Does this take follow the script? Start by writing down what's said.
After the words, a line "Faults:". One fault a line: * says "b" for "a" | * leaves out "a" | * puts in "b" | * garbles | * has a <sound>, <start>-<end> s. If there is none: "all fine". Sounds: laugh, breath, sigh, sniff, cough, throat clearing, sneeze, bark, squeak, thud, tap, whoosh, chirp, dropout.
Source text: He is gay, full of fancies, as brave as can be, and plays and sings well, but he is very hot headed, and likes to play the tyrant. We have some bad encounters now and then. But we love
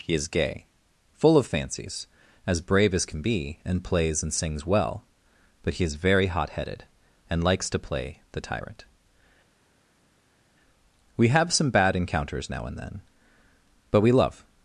He is gay, full of fancies, as brave as can be, and plays and sings well, but he is very hot headed, and likes to play the tyrant. We have some bad encounters now and then. But we love
Faults:
all fine